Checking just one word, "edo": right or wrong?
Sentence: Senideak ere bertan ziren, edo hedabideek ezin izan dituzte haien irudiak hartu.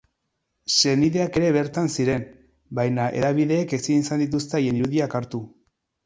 wrong